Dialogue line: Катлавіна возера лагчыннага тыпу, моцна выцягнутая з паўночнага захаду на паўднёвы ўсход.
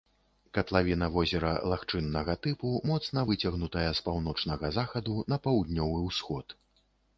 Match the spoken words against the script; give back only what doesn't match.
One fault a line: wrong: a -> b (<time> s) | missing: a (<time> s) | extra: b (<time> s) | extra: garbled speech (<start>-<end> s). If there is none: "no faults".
no faults